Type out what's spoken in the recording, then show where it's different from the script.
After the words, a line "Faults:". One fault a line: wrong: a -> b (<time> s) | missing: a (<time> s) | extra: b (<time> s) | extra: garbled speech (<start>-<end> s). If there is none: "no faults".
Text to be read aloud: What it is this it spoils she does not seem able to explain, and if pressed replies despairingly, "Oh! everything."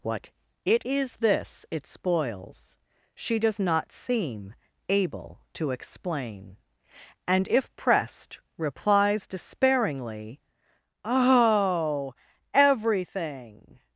What it is this it spoils she does not seem able to explain, and if pressed replies despairingly, "Oh! everything."
Faults:
no faults